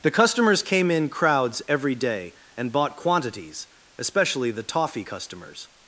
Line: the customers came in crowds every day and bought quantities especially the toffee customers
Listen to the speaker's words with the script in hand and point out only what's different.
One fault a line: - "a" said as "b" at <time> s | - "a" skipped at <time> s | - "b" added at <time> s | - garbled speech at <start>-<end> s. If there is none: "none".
none